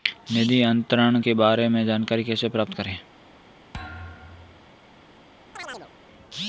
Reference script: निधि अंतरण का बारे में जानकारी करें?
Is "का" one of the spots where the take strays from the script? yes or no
yes